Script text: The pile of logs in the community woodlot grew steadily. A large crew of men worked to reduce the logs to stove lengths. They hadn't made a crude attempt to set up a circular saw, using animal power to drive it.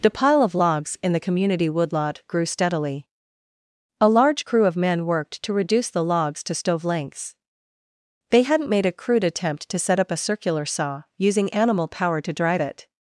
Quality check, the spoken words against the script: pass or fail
pass